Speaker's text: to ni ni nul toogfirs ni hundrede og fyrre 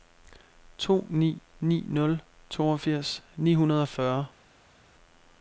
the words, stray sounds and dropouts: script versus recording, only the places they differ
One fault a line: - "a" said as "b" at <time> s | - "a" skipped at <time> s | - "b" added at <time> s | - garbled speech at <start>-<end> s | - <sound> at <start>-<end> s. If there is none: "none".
none